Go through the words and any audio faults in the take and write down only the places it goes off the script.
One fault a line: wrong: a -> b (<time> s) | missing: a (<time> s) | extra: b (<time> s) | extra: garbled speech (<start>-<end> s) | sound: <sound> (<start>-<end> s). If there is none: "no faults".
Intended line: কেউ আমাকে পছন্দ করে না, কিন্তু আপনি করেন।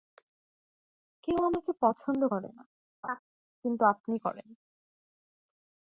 sound: laugh (3.0-3.2 s)